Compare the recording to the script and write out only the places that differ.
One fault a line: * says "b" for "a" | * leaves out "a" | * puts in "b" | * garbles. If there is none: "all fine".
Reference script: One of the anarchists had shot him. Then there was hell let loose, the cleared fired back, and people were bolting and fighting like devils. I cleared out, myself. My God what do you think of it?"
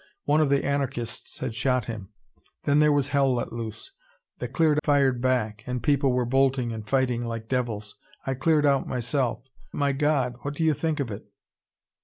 all fine